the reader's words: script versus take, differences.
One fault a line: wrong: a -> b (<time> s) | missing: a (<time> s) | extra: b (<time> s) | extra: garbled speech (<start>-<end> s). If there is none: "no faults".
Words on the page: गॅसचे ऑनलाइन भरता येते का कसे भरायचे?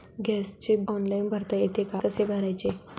no faults